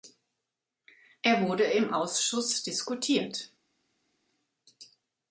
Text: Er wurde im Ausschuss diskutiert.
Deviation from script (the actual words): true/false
false